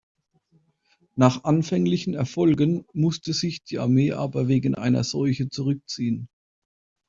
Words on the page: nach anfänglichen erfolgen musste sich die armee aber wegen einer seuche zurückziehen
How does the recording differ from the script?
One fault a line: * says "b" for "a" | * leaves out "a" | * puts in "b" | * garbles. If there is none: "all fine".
all fine